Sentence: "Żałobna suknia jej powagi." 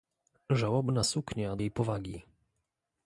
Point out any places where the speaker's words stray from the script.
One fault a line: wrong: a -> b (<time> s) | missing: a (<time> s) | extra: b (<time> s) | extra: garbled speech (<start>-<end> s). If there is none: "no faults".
no faults